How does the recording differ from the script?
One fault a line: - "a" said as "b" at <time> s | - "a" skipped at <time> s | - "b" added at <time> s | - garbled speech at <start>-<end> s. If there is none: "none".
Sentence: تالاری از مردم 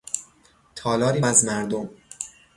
none